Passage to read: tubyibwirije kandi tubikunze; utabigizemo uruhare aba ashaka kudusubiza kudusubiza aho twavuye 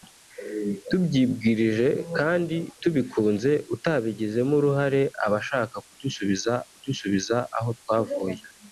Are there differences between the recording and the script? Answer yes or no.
no